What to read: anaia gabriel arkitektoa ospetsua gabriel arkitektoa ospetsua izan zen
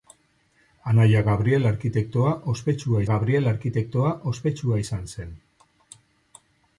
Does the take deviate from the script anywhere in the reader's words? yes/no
no